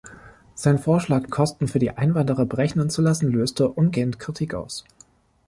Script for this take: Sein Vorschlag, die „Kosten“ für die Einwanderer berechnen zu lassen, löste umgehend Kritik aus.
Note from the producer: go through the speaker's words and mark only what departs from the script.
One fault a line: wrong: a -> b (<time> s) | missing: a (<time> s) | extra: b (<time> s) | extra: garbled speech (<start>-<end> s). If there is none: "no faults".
missing: die (1.3 s)